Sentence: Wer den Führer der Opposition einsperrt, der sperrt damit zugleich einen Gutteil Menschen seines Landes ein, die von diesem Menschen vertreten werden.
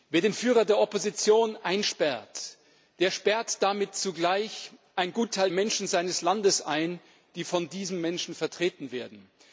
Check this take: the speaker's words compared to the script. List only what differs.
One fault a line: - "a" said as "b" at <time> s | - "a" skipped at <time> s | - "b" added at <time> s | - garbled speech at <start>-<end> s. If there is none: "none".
none